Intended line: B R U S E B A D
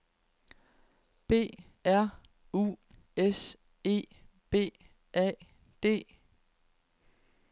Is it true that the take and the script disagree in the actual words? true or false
false